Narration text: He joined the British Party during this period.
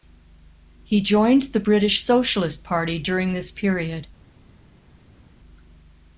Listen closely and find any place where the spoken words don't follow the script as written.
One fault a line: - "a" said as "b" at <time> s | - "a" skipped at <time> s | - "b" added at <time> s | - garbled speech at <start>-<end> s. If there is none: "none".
- "Socialist" added at 2.0 s